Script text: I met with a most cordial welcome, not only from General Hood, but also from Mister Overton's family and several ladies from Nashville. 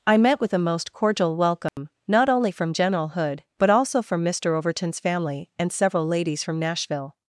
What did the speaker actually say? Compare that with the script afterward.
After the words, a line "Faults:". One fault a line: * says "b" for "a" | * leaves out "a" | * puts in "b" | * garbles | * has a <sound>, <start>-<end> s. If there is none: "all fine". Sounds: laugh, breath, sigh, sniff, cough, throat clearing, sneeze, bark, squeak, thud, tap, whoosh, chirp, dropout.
I met with a most cordial welcome, not only from General Hood, but also from Mister Overton's family and several ladies from Nashville.
Faults:
* has a dropout, 1.7-1.8 s